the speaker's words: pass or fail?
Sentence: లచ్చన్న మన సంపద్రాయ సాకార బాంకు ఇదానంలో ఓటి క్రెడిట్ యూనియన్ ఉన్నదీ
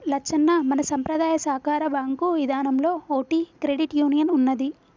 pass